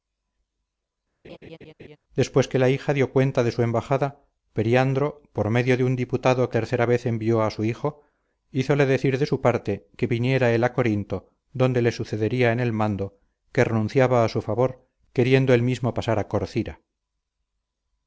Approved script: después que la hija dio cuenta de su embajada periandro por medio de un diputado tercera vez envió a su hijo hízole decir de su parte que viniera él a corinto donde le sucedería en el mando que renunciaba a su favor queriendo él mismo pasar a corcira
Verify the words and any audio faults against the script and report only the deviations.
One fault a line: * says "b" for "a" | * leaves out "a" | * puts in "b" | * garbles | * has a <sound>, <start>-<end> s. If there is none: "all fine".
* has a laugh, 1.2-2.0 s